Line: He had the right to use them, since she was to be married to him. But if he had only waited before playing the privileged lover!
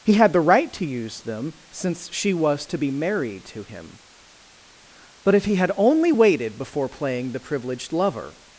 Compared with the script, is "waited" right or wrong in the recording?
right